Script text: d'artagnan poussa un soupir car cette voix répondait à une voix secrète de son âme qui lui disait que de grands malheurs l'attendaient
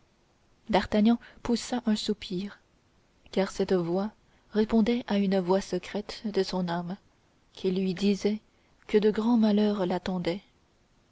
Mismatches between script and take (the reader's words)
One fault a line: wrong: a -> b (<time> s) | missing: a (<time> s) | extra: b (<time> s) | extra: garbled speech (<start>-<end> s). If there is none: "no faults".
no faults